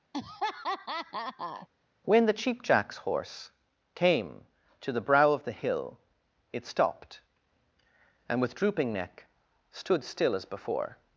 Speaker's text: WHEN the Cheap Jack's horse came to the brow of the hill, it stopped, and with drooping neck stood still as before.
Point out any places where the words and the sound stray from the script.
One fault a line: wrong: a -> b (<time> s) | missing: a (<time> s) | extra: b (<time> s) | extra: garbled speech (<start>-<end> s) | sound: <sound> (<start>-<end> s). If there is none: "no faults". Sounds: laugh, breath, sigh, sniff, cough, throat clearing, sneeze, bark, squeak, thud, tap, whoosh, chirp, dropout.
sound: laugh (0.1-1.7 s)